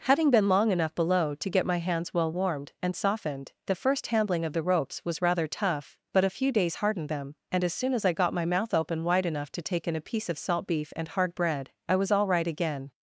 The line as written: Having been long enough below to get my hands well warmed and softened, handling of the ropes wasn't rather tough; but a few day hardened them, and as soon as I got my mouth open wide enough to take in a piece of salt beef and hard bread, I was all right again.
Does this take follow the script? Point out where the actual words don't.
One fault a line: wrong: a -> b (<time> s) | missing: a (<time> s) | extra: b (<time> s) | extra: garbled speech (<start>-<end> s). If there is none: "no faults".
extra: the first (3.7 s)
wrong: wasn't -> was (5.0 s)
wrong: day -> days (6.5 s)